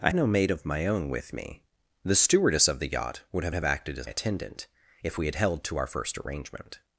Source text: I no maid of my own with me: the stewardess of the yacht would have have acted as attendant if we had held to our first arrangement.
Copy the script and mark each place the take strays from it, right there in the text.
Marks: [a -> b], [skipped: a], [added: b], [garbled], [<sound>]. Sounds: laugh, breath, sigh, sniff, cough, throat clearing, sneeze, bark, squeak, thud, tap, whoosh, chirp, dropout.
I no maid of my own with me: the stewardess of the yacht would have have acted as attendant if we had held to our first arrangement.